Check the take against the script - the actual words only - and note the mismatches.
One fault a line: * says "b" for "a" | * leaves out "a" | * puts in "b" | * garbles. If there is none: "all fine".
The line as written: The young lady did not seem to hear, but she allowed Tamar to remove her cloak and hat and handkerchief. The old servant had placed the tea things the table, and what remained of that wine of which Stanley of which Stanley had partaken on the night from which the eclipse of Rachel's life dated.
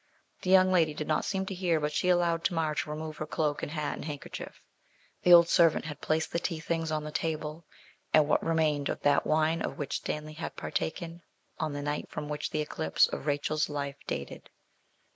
* puts in "on"
* leaves out "of which Stanley"